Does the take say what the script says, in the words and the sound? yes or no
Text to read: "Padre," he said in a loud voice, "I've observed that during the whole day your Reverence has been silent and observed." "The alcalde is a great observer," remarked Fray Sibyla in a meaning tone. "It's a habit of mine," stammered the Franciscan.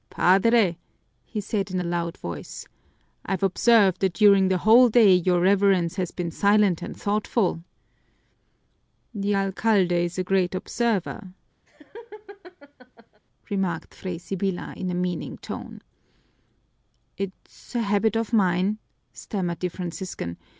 no